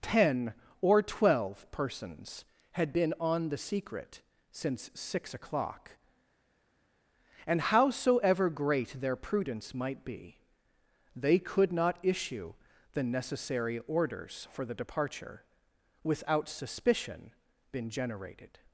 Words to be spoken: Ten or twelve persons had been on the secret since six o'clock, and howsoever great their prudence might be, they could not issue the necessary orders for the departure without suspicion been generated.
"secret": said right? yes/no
yes